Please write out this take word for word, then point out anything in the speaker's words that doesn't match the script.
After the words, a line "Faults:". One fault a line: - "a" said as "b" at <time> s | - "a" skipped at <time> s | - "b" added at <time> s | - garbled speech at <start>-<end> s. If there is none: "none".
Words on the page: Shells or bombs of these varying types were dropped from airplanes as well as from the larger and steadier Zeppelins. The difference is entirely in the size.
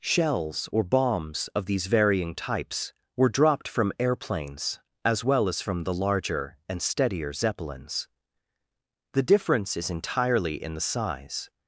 Shells or bombs of these varying types were dropped from airplanes as well as from the larger and steadier Zeppelins. The difference is entirely in the size.
Faults:
none